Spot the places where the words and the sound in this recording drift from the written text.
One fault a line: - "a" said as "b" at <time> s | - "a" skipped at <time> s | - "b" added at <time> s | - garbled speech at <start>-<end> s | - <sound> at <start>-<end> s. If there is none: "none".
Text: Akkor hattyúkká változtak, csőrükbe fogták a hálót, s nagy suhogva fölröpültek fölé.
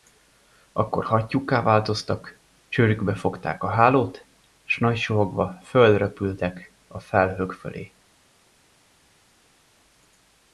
- "a felhők" added at 6.9 s